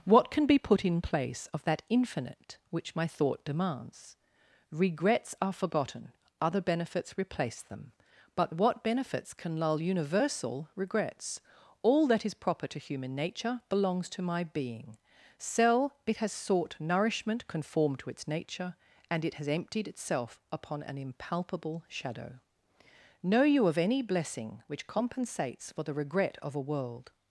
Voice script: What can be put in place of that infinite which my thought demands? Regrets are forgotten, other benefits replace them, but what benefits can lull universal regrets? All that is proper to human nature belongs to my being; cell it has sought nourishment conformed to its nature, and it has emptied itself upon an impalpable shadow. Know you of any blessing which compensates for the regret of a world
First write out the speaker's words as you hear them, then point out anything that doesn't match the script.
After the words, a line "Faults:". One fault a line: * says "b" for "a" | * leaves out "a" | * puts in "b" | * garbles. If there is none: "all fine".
What can be put in place of that infinite which my thought demands? Regrets are forgotten, other benefits replace them, but what benefits can lull universal regrets? All that is proper to human nature belongs to my being; cell it has sought nourishment conformed to its nature, and it has emptied itself upon an impalpable shadow. Know you of any blessing which compensates for the regret of a world
Faults:
all fine